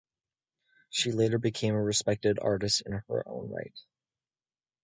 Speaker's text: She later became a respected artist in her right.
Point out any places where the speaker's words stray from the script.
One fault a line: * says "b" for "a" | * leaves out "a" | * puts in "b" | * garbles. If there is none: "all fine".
* puts in "own"